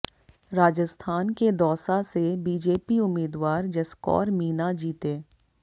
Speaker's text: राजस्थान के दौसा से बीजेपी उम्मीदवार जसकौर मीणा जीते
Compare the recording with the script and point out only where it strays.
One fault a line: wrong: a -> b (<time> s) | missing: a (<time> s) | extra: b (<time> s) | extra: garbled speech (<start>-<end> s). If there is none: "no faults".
no faults